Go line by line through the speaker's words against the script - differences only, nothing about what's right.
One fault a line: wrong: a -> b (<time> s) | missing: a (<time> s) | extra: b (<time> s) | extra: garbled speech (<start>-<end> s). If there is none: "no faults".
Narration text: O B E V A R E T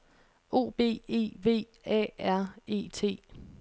no faults